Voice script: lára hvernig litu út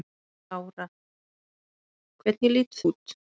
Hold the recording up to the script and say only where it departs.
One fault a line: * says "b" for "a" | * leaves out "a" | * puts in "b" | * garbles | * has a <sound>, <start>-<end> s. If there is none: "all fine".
all fine